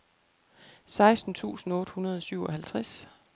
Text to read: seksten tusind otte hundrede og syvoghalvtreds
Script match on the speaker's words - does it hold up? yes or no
yes